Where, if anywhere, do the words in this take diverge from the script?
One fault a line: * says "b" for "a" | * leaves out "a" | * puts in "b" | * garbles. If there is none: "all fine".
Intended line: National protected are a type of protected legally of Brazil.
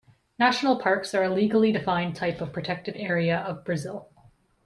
* says "parks" for "protected"
* puts in "legally defined"
* says "area" for "legally"